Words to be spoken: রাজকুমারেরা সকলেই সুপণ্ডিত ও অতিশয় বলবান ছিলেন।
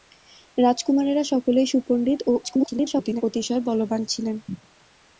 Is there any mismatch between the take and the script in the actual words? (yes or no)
yes